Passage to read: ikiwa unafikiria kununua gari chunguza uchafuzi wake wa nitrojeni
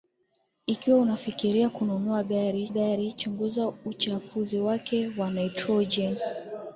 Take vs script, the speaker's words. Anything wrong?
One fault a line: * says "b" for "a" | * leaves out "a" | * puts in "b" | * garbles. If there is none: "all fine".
* puts in "gari"